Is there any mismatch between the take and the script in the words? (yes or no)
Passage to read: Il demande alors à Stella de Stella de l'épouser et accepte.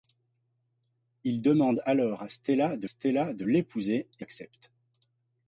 no